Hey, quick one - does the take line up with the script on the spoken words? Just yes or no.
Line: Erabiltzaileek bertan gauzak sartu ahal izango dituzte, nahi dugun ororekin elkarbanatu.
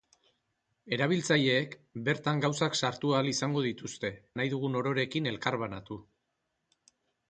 yes